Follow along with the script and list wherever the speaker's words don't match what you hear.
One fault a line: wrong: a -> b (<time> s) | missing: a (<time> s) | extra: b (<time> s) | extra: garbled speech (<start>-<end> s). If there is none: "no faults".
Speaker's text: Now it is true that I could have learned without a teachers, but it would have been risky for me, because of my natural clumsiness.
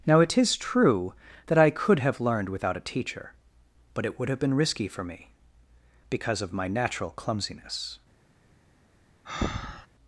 wrong: teachers -> teacher (2.9 s)